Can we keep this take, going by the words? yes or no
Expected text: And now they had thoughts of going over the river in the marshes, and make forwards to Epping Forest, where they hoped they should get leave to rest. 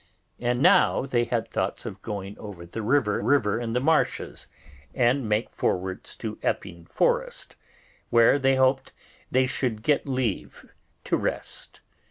no